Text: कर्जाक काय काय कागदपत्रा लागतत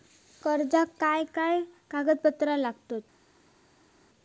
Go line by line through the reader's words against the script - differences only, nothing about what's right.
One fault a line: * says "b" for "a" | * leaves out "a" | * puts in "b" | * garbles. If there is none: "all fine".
all fine